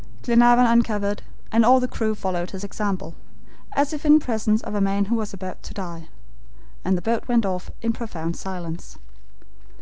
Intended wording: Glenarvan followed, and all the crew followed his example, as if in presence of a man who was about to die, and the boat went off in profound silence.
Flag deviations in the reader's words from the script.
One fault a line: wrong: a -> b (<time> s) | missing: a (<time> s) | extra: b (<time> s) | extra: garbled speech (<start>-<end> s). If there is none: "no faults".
wrong: followed -> uncovered (0.7 s)